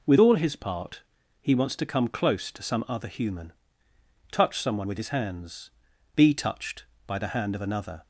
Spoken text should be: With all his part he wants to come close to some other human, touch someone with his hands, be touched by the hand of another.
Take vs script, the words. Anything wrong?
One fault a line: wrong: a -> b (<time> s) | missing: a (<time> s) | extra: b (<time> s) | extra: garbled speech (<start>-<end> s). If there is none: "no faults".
no faults